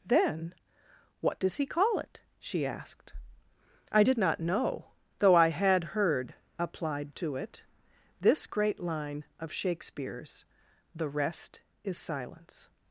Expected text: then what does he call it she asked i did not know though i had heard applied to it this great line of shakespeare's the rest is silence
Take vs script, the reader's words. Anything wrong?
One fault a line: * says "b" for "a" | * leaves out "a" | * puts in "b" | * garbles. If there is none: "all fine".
all fine